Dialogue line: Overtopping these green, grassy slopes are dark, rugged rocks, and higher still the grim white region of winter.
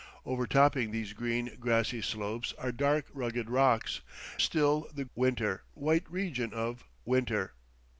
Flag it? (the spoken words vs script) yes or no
yes